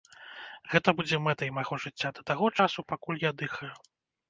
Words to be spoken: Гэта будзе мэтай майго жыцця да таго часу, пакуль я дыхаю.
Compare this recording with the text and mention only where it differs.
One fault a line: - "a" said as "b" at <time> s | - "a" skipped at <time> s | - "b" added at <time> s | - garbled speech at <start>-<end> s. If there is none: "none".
none